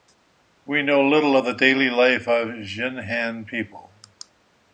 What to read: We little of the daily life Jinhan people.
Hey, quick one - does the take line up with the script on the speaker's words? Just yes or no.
no